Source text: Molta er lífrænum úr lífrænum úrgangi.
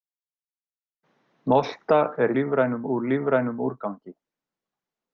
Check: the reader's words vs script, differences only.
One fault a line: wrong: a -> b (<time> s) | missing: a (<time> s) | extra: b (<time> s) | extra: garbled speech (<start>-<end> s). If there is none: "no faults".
no faults